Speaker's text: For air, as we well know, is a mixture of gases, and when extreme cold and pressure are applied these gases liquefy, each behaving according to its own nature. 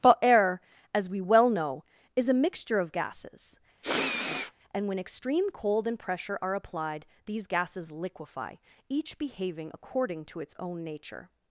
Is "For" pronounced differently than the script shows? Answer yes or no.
yes